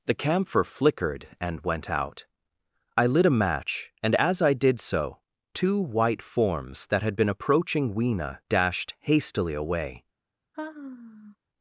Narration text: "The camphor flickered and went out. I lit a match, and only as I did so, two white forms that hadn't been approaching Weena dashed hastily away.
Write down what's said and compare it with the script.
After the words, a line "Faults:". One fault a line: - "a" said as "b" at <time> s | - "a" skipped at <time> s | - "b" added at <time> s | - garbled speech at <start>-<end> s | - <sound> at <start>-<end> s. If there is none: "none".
"The camphor flickered and went out. I lit a match, and as I did so, two white forms that had been approaching Weena dashed hastily away.
Faults:
- "only" skipped at 4.2 s
- "hadn't" said as "had" at 7.0 s
- sigh at 10.5-11.4 s